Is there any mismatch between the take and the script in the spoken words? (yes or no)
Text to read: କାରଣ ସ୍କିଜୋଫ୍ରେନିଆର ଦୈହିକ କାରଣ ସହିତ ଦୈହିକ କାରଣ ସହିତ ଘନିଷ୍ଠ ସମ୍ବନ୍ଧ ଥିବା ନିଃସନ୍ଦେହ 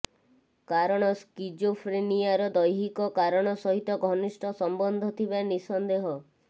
yes